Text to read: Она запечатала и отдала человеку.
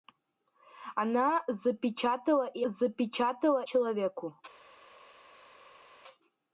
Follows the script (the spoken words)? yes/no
no